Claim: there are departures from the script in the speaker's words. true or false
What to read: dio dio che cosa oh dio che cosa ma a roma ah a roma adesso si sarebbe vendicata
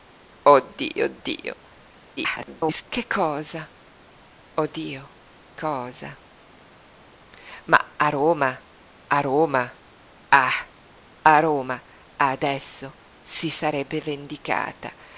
true